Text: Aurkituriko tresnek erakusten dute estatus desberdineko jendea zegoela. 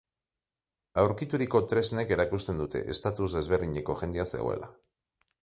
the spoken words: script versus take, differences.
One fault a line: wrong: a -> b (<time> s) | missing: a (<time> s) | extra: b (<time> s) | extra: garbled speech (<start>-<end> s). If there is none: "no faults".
no faults